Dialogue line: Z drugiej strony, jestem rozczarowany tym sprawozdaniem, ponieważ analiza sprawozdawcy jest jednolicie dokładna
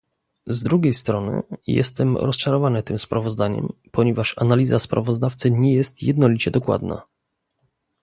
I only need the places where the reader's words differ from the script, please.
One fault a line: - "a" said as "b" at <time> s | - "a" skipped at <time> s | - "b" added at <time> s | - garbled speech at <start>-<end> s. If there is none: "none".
- "nie" added at 5.5 s